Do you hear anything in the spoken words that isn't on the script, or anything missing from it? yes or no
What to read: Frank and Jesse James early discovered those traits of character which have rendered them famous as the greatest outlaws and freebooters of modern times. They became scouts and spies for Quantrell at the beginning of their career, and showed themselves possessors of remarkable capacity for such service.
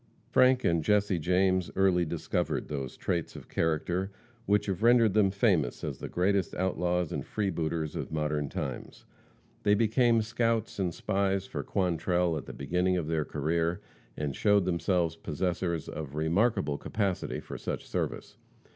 no